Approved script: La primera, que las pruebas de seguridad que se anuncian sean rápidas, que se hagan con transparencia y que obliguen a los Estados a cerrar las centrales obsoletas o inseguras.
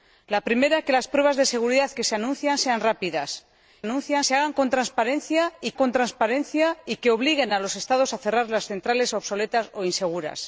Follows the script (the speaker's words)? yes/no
no